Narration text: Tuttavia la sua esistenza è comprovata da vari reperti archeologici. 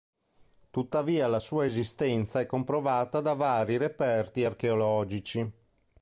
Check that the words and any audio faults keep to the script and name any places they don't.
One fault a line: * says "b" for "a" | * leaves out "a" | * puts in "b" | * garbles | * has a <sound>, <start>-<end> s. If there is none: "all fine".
all fine